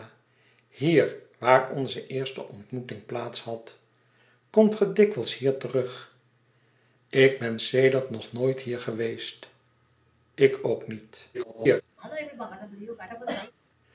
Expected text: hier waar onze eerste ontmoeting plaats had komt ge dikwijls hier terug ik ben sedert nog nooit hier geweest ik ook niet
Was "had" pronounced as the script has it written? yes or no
yes